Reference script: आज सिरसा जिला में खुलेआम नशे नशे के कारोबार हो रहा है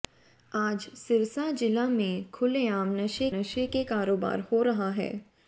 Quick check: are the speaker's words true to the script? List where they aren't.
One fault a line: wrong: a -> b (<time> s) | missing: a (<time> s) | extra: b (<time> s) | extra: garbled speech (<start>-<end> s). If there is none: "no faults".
no faults